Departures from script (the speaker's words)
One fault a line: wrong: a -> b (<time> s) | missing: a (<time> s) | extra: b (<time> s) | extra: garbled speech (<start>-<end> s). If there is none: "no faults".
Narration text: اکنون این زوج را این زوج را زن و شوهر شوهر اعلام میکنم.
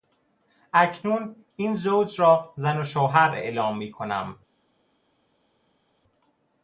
missing: این زوج را (2.5 s)
missing: شوهر (3.3 s)